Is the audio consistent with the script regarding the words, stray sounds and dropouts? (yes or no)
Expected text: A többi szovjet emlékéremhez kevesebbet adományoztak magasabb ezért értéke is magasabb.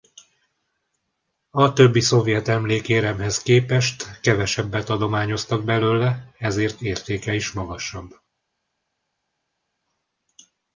no